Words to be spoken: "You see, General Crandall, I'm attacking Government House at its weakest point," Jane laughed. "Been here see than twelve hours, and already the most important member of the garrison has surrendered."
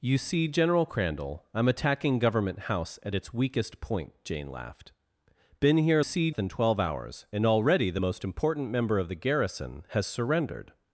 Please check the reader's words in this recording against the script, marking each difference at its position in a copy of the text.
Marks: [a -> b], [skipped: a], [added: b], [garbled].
"You see, General Crandall, I'm attacking Government House at its weakest point," Jane laughed. "Been here see than twelve hours, and already the most important member of the garrison has surrendered."